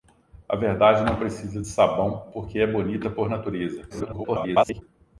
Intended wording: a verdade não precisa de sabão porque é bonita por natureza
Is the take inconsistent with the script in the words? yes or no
yes